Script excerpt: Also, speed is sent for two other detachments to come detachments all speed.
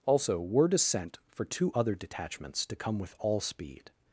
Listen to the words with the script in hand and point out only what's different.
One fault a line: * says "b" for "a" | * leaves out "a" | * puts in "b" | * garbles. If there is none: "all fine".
* says "word" for "speed"
* says "with" for "detachments"